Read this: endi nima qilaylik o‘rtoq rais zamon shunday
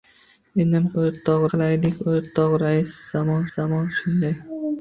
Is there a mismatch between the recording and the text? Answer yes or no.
yes